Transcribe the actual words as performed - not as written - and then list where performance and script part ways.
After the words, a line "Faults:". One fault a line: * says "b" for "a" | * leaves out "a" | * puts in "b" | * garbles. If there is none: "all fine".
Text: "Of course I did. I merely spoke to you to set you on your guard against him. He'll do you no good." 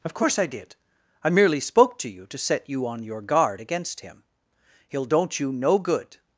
"Of course I did. I merely spoke to you to set you on your guard against him. He'll don't you no good."
Faults:
* says "don't" for "do"